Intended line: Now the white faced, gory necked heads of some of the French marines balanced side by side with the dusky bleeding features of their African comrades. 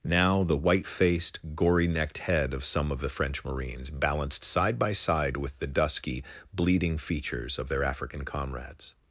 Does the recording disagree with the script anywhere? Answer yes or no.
yes